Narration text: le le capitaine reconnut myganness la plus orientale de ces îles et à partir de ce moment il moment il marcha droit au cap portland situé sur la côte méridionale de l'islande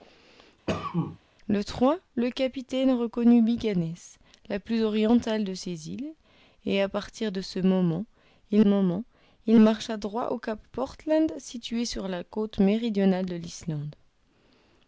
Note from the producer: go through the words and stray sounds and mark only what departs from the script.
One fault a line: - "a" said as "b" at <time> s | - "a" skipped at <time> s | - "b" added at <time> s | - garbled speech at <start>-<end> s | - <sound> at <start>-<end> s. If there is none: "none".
- cough at 0.7-1.2 s